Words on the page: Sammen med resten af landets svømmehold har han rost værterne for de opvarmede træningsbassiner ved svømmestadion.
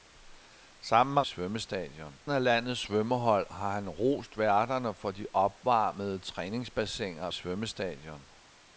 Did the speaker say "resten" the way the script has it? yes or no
no